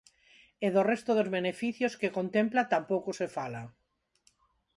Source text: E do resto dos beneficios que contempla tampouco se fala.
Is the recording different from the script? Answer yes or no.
no